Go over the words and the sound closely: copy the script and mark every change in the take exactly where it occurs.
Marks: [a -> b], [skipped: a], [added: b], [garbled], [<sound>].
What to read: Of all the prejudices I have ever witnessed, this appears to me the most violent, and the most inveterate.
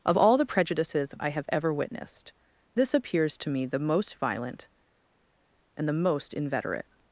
Of all the prejudices I have ever witnessed, this appears to me the most violent, and the most inveterate.